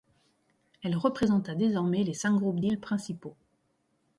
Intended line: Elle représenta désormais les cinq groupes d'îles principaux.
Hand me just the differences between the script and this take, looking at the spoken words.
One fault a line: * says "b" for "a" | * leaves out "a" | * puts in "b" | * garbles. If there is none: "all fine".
all fine